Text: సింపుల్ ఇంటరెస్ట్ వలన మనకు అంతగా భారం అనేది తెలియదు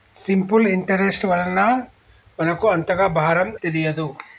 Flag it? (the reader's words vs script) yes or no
yes